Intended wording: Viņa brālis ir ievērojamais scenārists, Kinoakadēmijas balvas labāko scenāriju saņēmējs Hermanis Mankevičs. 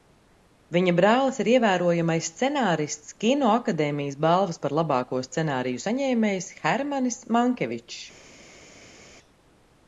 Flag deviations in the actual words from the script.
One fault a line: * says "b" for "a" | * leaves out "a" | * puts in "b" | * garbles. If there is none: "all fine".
* puts in "par"